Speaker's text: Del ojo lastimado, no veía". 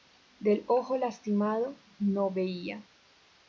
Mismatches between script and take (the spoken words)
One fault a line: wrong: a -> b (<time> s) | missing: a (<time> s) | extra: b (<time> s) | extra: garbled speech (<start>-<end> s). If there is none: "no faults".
no faults